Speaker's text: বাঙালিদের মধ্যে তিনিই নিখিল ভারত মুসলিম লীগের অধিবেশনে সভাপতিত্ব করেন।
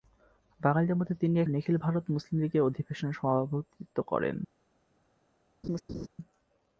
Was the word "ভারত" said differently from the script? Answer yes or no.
no